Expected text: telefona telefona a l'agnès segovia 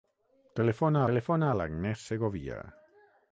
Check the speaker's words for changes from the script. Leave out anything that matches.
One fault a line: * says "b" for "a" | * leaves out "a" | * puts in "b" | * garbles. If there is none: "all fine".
all fine